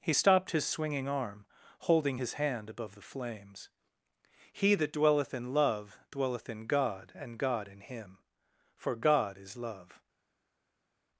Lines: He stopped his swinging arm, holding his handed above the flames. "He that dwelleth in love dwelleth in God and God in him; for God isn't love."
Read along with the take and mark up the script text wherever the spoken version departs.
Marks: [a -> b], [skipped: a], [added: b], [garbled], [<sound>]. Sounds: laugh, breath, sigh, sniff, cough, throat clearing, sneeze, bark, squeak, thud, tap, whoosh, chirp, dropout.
He stopped his swinging arm, holding his [handed -> hand] above the flames. "He that dwelleth in love dwelleth in God and God in him; for God [isn't -> is] love."